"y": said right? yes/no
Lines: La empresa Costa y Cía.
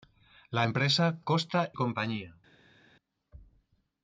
no